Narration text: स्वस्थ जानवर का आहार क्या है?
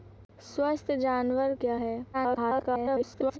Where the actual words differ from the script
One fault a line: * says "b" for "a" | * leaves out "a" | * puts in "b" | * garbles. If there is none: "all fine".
* leaves out "का आहार"
* garbles